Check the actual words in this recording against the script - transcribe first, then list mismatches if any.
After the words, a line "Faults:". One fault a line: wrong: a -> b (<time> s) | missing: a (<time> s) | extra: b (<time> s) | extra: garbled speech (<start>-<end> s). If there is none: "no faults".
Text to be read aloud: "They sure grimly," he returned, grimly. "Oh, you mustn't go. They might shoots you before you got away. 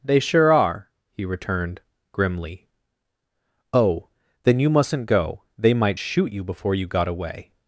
"They sure are," he returned, grimly. "Oh, then you mustn't go. They might shoot you before you got away.
Faults:
wrong: grimly -> are (0.5 s)
extra: then (4.4 s)
wrong: shoots -> shoot (6.0 s)